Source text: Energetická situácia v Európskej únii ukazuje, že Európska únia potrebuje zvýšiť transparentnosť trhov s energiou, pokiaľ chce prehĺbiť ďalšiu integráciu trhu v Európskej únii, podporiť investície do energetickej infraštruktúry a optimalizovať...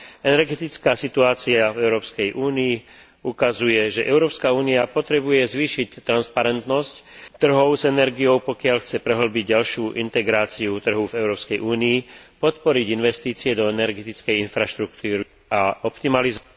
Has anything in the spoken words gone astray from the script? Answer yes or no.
no